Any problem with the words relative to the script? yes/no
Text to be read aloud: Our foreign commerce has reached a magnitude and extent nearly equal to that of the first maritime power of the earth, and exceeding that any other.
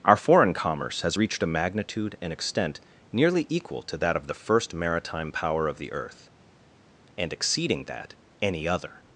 no